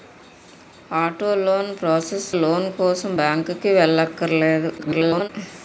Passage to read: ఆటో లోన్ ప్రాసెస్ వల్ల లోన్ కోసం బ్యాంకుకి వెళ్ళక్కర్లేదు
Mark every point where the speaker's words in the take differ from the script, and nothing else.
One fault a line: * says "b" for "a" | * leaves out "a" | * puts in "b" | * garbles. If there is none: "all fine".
* leaves out "వల్ల"
* garbles